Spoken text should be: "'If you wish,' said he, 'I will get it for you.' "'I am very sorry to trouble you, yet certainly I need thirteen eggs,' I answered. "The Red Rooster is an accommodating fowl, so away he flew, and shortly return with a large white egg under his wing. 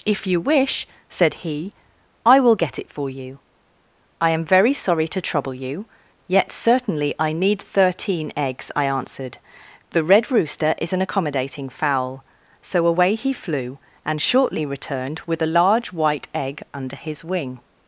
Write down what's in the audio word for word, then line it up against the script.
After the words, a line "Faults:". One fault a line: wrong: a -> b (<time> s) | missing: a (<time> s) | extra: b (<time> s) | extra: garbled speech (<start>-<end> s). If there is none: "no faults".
"'If you wish,' said he, 'I will get it for you.' "'I am very sorry to trouble you, yet certainly I need thirteen eggs,' I answered. "The Red Rooster is an accommodating fowl, so away he flew, and shortly returned with a large white egg under his wing.
Faults:
wrong: return -> returned (14.6 s)